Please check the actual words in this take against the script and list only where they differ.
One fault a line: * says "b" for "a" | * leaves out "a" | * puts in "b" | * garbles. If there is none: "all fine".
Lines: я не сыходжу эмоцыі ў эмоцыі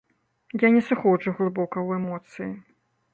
* says "глыбока" for "эмоцыі"